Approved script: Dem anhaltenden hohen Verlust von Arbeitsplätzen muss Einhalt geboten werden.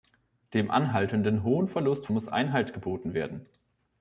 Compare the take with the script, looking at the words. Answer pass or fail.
fail